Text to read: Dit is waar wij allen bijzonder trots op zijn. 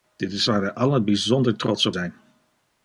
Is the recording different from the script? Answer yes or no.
no